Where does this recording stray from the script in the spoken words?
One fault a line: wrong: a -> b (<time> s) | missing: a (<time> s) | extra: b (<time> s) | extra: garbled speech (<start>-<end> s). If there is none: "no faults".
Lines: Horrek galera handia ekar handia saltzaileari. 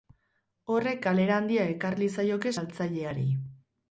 wrong: handia -> liezaioke (2.0 s)